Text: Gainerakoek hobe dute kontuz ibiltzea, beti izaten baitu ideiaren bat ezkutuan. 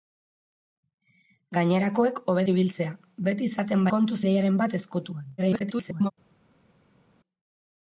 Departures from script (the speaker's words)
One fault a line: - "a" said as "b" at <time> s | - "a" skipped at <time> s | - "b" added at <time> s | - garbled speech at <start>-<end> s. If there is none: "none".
- "dute kontuz" skipped at 2.5 s
- "baitu" said as "kontuz" at 3.9 s
- garbled speech at 5.4-6.1 s